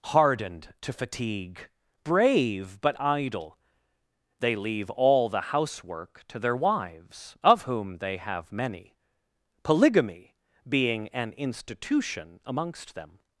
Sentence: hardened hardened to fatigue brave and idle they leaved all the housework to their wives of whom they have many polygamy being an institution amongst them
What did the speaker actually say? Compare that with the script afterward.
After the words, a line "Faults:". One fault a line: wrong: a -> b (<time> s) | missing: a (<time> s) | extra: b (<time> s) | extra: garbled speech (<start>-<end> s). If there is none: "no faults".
hardened to fatigue brave but idle they leave all the housework to their wives of whom they have many polygamy being an institution amongst them
Faults:
missing: hardened (0.7 s)
wrong: and -> but (2.8 s)
wrong: leaved -> leave (4.5 s)